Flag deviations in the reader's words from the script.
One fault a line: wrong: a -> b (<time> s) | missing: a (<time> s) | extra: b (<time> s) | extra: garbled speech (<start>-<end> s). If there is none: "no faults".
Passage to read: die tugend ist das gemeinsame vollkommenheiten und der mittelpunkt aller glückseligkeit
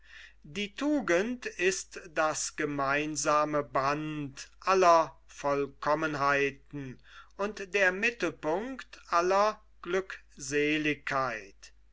extra: band aller (3.6 s)